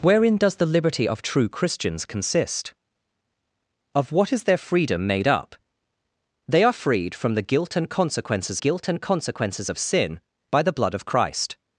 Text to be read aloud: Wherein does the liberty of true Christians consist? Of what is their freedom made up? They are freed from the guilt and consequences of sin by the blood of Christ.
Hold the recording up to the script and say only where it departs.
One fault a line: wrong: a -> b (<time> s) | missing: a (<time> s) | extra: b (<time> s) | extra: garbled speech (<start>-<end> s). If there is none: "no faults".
extra: guilt and consequences (8.6 s)